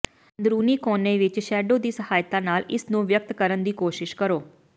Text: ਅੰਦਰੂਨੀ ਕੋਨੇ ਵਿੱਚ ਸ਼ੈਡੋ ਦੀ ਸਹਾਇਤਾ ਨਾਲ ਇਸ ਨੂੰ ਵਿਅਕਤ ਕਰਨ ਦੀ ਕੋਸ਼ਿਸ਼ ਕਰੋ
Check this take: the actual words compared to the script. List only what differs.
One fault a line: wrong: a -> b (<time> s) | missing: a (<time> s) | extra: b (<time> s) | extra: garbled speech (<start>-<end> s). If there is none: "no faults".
no faults